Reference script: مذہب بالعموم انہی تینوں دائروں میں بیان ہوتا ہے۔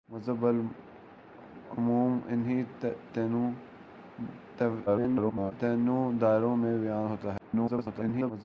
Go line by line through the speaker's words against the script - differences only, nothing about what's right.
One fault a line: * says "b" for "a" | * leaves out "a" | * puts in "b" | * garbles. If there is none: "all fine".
* garbles
* garbles